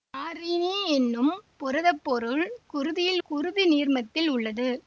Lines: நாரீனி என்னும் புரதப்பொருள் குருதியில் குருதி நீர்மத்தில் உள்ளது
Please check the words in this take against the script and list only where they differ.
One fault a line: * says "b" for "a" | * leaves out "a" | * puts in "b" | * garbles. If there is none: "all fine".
all fine